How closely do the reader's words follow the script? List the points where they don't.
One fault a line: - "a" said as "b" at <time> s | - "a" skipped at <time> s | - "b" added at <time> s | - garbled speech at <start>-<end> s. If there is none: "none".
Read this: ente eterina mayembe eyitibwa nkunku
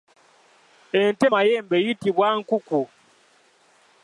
- "eterina" skipped at 1.2 s